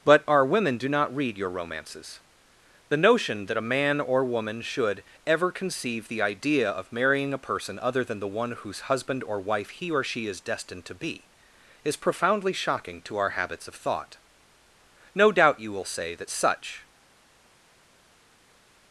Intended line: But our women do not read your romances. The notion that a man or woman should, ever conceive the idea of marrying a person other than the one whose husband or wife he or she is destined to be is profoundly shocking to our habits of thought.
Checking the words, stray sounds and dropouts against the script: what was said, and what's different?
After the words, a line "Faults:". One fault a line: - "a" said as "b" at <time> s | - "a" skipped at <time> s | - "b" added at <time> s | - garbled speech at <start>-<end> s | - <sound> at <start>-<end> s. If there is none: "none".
But our women do not read your romances. The notion that a man or woman should, ever conceive the idea of marrying a person other than the one whose husband or wife he or she is destined to be is profoundly shocking to our habits of thought. No doubt you will say that such
Faults:
- "No doubt you will say that such" added at 15.1 s